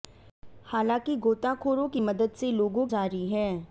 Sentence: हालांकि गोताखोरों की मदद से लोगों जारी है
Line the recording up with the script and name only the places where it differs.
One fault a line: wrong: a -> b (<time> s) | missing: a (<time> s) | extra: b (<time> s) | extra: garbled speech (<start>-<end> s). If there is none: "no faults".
no faults